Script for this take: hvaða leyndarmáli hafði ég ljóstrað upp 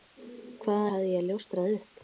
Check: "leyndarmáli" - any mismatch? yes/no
yes